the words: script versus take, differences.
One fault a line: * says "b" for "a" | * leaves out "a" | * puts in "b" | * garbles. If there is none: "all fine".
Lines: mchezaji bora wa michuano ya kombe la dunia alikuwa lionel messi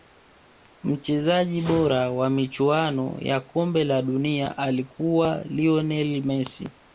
all fine